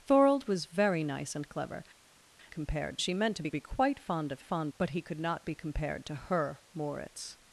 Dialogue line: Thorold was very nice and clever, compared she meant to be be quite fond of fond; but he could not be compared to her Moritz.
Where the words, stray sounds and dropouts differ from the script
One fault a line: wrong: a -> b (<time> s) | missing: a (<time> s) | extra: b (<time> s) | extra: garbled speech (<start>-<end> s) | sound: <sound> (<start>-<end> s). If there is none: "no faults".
no faults